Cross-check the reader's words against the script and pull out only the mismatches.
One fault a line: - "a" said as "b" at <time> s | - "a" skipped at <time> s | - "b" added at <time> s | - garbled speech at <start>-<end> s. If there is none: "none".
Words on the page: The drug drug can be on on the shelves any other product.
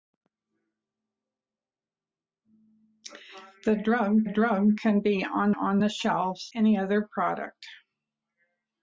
none